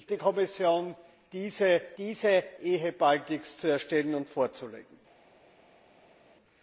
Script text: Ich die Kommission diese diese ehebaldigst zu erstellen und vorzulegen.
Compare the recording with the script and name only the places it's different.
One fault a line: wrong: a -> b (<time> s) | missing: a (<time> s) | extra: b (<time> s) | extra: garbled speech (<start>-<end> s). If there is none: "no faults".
no faults